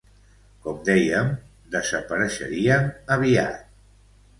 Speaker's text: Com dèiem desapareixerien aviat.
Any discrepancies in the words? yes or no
no